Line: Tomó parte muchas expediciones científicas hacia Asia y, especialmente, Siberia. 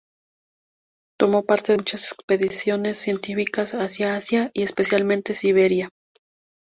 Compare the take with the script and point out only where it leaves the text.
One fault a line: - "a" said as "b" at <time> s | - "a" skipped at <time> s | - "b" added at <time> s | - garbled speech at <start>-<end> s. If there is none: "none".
none